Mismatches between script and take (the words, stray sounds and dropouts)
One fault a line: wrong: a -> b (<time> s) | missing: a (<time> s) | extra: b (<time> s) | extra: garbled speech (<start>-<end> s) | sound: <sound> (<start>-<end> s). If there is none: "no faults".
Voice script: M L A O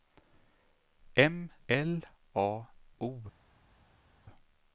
no faults